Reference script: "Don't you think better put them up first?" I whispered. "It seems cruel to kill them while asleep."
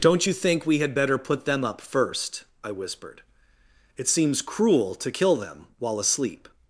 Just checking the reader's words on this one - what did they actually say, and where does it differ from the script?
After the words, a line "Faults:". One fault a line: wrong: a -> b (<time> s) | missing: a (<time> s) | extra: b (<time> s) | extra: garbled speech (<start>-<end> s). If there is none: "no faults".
"Don't you think we had better put them up first?" I whispered. "It seems cruel to kill them while asleep."
Faults:
extra: we had (0.6 s)